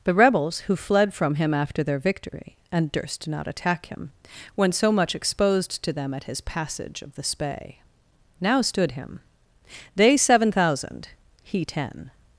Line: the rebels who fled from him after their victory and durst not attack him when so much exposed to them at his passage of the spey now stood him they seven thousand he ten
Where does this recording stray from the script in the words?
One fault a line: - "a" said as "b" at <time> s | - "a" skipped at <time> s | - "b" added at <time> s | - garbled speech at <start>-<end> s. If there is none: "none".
none